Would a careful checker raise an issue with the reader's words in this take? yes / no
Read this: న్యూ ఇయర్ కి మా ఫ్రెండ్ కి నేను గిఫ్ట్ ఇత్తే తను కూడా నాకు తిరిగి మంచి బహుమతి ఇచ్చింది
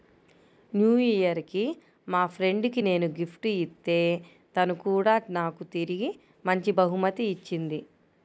no